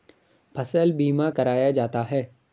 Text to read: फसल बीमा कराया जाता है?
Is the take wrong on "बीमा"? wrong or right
right